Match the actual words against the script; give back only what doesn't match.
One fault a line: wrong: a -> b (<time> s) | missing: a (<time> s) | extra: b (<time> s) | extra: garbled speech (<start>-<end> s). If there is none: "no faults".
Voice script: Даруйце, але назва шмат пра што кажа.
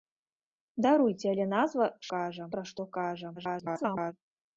wrong: шмат -> кажа (2.1 s)
extra: garbled speech (3.4-4.1 s)